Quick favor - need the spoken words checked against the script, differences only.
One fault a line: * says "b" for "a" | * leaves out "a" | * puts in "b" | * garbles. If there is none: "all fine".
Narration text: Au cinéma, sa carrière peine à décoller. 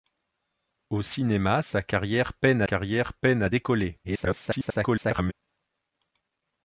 * puts in "carrière peine"
* garbles